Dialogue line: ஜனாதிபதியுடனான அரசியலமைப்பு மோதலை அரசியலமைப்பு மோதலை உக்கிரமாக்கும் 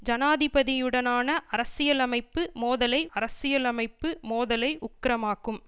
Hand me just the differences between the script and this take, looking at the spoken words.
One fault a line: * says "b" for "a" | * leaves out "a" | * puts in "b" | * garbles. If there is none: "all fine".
all fine